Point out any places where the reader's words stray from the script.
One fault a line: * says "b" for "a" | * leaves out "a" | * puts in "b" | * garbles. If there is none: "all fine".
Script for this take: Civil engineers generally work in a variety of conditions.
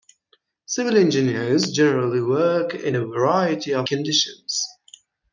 all fine